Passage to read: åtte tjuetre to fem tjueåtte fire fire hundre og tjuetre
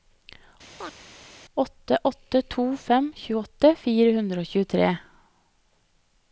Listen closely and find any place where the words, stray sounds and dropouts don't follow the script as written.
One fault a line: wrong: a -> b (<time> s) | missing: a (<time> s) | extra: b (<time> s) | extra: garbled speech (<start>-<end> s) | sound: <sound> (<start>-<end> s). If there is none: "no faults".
sound: chirp (0.8-1.0 s)
wrong: tjuetre -> åtte (2.0 s)
missing: fire (4.1 s)